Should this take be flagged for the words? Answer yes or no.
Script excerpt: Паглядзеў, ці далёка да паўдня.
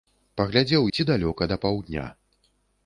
no